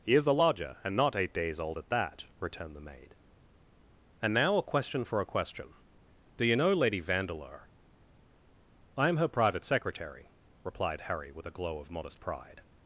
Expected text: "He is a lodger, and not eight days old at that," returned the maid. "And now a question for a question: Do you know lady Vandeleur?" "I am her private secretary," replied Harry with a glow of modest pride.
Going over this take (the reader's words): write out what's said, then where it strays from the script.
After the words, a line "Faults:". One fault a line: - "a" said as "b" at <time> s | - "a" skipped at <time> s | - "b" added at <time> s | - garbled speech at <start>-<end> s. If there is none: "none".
"He is a lodger, and not eight days old at that," returned the maid. "And now a question for a question: Do you know lady Vandeleur?" "I am her private secretary," replied Harry with a glow of modest pride.
Faults:
none